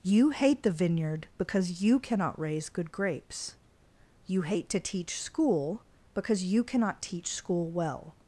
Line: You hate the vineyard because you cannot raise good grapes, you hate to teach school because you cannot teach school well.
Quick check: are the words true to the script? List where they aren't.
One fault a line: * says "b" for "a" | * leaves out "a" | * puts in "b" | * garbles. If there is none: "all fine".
all fine